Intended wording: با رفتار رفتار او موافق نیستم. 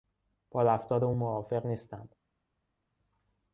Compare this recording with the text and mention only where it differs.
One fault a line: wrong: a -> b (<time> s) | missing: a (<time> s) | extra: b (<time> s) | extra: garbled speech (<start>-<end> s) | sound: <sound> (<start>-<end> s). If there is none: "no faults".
missing: رفتار (1.1 s)